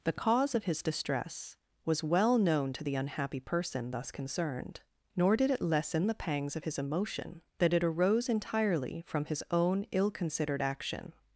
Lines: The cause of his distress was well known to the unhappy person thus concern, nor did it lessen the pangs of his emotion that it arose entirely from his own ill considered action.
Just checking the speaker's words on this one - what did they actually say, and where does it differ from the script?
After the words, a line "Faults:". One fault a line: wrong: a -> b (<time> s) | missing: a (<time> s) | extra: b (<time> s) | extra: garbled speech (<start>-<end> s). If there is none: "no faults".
The cause of his distress was well known to the unhappy person thus concerned, nor did it lessen the pangs of his emotion that it arose entirely from his own ill considered action.
Faults:
wrong: concern -> concerned (4.1 s)